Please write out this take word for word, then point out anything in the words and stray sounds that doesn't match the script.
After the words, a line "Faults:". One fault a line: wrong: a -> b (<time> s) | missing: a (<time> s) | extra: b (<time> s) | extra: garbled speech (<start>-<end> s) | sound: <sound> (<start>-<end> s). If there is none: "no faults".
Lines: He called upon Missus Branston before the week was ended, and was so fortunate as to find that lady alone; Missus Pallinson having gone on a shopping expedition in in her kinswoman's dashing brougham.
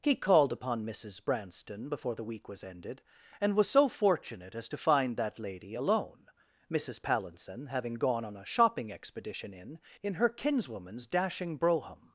He called upon Missus Branston before the week was ended, and was so fortunate as to find that lady alone; Missus Pallinson having gone on a shopping expedition in in her kinswoman's dashing brougham.
Faults:
no faults